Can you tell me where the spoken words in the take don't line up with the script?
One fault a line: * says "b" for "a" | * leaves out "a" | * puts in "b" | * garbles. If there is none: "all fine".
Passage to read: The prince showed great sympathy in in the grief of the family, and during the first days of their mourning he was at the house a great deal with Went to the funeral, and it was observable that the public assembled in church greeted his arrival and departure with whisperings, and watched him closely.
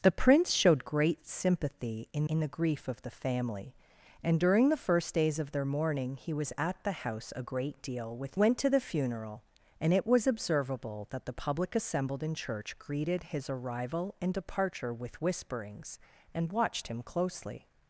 all fine